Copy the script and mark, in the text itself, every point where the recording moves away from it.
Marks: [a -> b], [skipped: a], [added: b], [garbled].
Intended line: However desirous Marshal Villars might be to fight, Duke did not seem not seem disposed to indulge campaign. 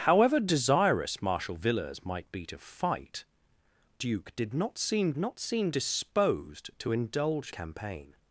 However desirous Marshal Villars might be to fight, Duke did not seem not seem disposed to indulge campaign.